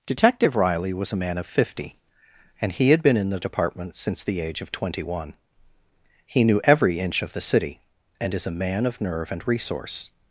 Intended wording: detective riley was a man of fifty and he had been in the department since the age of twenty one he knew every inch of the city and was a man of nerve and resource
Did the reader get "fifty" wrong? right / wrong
right